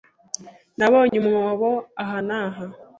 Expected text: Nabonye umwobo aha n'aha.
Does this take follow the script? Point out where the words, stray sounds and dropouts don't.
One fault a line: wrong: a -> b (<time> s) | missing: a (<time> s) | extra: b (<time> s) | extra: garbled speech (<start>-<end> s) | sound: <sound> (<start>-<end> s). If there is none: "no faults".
sound: dropout (1.1-1.1 s)